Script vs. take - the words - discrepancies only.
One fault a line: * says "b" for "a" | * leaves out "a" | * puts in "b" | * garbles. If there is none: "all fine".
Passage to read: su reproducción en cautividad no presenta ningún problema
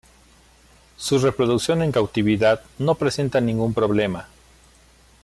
all fine